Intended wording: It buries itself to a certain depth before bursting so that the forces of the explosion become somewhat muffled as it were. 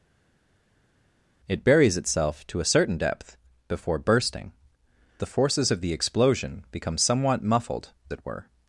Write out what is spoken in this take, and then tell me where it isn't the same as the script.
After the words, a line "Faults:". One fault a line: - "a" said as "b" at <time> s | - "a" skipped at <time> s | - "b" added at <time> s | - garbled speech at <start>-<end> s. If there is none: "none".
It buries itself to a certain depth before bursting the forces of the explosion become somewhat muffled it were.
Faults:
- "so that" skipped at 4.5 s
- "as" skipped at 7.9 s